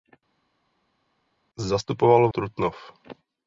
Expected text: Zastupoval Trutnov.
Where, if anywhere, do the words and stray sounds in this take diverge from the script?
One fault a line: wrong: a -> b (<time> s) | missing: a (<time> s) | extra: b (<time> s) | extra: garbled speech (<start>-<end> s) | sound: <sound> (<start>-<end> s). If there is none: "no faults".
no faults